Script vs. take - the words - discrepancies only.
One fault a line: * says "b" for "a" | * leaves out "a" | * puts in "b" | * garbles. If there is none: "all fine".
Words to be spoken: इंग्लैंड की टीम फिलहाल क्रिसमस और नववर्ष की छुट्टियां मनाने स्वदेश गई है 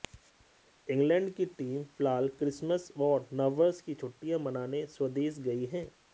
all fine